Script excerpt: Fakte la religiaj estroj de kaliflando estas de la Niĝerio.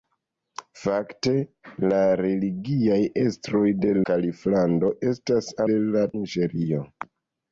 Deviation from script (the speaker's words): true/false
false